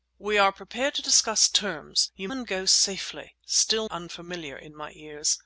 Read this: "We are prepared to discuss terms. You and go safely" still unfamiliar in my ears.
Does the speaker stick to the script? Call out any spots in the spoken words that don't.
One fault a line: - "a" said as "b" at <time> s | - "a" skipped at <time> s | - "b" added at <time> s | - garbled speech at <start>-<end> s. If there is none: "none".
none